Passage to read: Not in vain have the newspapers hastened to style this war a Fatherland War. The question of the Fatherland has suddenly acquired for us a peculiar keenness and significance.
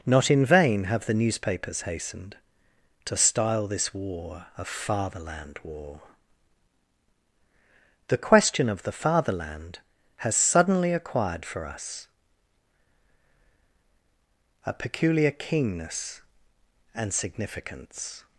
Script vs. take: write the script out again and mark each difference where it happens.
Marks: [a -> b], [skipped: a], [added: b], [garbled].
Not in vain have the newspapers hastened to style this war a Fatherland War. The question of the Fatherland has suddenly acquired for us a peculiar keenness and significance.